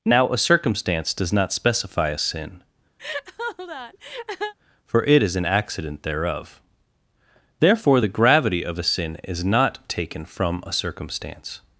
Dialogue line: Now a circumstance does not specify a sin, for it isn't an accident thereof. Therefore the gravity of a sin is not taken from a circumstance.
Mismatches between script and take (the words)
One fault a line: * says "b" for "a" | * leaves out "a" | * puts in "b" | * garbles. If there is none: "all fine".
* says "is" for "isn't"